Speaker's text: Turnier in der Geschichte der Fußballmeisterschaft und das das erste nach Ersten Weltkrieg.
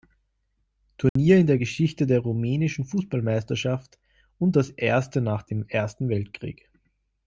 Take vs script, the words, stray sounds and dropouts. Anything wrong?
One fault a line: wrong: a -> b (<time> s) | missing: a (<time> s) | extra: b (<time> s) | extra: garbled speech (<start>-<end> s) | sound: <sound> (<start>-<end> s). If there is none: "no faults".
sound: dropout (1.1-1.2 s)
extra: rumänischen (2.2 s)
missing: das (4.7 s)
extra: dem (5.4 s)